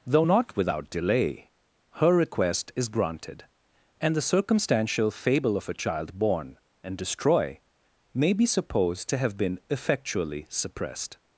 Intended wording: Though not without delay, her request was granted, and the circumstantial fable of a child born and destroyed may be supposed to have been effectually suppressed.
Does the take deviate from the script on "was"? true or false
true